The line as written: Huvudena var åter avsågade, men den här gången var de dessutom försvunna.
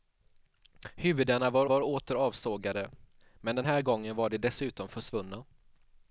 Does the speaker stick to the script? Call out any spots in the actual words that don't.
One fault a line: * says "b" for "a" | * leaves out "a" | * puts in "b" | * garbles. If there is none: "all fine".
* puts in "var"